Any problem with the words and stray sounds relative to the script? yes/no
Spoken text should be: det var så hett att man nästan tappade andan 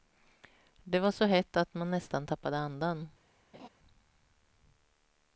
yes